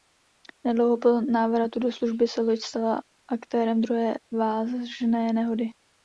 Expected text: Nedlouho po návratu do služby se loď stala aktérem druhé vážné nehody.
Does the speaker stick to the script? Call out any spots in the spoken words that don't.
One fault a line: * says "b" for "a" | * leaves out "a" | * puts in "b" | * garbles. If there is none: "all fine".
all fine